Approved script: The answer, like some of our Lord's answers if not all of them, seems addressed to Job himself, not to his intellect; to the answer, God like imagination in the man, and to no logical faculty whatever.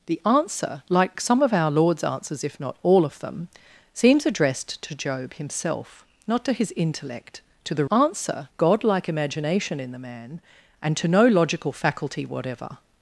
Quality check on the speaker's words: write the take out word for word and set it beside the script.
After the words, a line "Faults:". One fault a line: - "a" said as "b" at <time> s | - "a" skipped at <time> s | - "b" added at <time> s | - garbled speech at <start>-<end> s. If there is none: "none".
The answer, like some of our Lord's answers if not all of them, seems addressed to Job himself, not to his intellect; to the answer, God like imagination in the man, and to no logical faculty whatever.
Faults:
none